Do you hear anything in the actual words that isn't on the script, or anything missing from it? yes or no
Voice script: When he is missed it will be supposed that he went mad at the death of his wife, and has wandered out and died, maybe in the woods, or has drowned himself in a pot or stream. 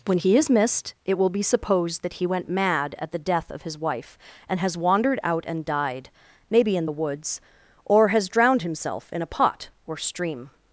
no